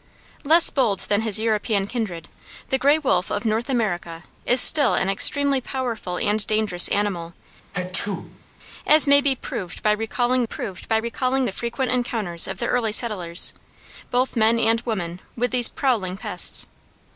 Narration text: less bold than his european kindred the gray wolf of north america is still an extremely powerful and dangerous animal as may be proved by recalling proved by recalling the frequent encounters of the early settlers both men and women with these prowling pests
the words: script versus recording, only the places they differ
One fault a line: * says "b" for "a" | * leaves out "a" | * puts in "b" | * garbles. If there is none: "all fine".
all fine